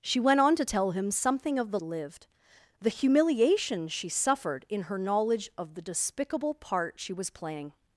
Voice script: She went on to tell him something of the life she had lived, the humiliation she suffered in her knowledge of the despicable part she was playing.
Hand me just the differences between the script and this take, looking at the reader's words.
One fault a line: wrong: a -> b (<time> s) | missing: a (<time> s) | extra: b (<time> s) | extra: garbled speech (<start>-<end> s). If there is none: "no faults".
missing: life she had (1.8 s)